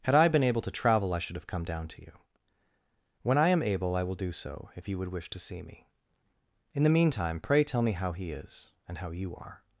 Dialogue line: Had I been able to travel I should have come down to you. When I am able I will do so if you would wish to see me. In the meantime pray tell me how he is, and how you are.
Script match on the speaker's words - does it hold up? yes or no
yes